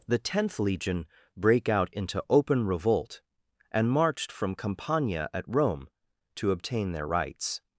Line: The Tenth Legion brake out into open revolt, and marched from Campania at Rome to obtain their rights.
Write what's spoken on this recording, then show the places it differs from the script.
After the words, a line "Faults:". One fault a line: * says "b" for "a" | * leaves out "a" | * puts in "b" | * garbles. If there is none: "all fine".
The Tenth Legion brake out into open revolt, and marched from Campania at Rome to obtain their rights.
Faults:
all fine